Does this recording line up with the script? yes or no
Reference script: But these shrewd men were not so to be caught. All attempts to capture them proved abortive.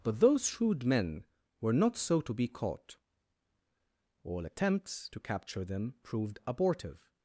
no